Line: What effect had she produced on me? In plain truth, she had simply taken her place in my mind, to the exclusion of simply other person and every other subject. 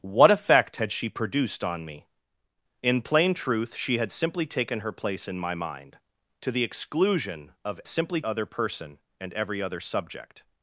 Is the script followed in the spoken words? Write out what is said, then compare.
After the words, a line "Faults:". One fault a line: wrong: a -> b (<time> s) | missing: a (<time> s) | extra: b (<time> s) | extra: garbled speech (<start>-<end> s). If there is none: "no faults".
What effect had she produced on me? In plain truth, she had simply taken her place in my mind, to the exclusion of simply other person and every other subject.
Faults:
no faults